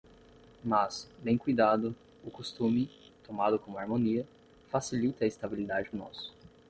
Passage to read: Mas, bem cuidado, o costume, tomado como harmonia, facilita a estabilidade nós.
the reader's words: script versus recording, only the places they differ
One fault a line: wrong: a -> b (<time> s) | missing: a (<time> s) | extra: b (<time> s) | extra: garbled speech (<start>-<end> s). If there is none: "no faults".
no faults